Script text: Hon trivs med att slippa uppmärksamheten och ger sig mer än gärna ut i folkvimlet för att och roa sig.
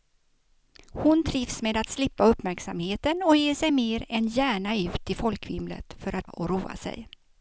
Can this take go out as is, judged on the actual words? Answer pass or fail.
pass